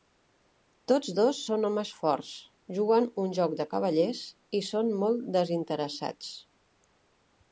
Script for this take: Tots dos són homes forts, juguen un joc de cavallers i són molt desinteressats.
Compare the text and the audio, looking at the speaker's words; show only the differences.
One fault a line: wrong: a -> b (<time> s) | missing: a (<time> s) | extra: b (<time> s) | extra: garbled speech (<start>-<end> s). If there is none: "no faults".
no faults